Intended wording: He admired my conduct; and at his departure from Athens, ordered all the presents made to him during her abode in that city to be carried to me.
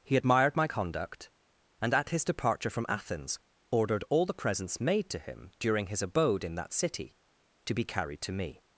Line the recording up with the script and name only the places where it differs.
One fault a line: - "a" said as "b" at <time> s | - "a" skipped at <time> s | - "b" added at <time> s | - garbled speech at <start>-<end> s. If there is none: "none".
- "her" said as "his" at 5.9 s